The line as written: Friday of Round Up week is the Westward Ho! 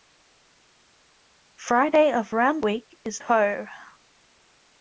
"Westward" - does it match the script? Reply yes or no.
no